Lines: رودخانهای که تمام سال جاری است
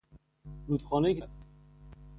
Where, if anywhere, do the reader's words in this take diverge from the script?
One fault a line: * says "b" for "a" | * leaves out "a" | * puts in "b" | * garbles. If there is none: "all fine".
* leaves out "تمام سال جاری"